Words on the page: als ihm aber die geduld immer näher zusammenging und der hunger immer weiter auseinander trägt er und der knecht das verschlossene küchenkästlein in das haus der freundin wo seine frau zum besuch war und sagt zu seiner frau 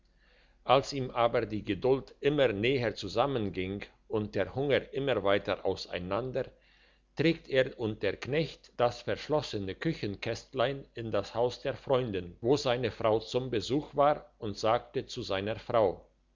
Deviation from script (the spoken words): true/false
false